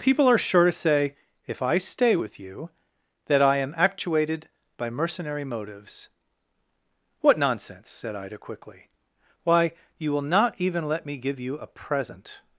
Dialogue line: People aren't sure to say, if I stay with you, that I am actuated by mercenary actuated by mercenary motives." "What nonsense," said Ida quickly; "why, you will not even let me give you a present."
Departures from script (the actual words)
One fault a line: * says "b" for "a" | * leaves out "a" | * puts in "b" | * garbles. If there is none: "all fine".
* says "are" for "aren't"
* leaves out "actuated by mercenary"